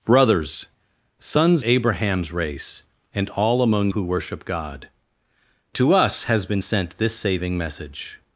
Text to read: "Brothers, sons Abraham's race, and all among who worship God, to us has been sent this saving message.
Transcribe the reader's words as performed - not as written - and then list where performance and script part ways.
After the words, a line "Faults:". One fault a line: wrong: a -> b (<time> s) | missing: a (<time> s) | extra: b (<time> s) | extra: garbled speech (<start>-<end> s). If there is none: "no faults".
"Brothers, sons Abraham's race, and all among who worship God, to us has been sent this saving message.
Faults:
no faults